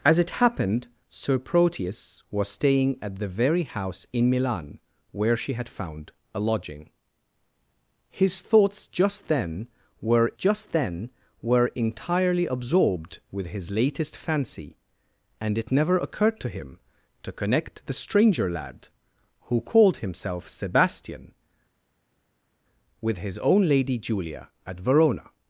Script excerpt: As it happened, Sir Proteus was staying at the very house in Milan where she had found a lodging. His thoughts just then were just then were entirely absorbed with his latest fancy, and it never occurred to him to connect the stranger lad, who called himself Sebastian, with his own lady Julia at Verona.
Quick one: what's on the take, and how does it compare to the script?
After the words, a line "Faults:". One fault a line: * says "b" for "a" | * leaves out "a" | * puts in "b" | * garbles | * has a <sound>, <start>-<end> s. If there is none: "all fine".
As it happened, Sir Proteus was staying at the very house in Milan where she had found a lodging. His thoughts just then were just then were entirely absorbed with his latest fancy, and it never occurred to him to connect the stranger lad, who called himself Sebastian, with his own lady Julia at Verona.
Faults:
all fine